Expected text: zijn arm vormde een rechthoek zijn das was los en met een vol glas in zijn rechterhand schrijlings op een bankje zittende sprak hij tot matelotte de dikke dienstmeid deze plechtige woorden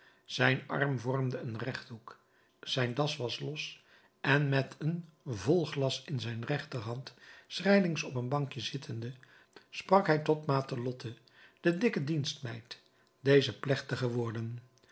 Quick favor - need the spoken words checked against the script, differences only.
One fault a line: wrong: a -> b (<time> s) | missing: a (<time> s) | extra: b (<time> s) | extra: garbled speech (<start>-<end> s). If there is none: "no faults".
no faults